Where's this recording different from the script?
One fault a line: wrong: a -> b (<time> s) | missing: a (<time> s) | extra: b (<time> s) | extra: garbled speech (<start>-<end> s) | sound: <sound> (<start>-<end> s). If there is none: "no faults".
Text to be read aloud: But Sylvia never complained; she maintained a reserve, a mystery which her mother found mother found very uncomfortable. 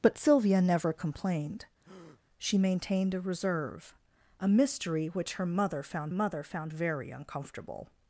sound: breath (1.8-2.2 s)